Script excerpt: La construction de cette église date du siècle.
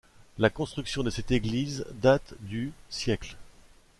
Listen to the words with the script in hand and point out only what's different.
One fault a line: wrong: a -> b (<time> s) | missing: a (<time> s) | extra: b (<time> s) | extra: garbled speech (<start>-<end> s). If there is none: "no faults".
no faults